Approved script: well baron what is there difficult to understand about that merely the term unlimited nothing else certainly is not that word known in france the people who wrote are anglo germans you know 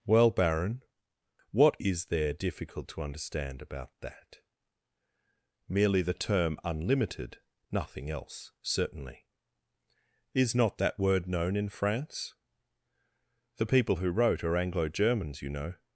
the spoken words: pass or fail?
pass